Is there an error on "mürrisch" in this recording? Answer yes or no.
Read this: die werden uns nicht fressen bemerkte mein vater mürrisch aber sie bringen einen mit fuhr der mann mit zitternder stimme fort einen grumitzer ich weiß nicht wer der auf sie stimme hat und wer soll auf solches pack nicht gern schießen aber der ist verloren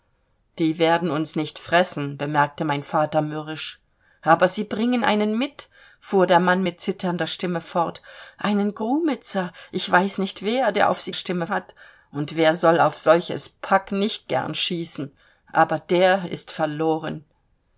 no